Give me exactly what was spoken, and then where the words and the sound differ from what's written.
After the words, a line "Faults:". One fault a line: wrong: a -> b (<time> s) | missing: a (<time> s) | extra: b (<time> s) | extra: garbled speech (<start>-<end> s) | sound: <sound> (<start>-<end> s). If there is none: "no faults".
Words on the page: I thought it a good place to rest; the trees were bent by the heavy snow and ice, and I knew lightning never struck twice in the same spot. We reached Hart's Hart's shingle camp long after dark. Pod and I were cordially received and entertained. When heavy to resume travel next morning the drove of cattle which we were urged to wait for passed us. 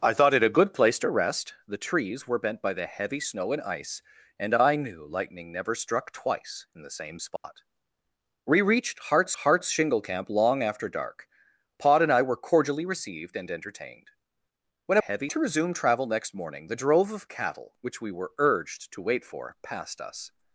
I thought it a good place to rest; the trees were bent by the heavy snow and ice, and I knew lightning never struck twice in the same spot. We reached Hart's Hart's shingle camp long after dark. Pod and I were cordially received and entertained. When heavy to resume travel next morning the drove of cattle which we were urged to wait for passed us.
Faults:
sound: dropout (7.4-7.4 s)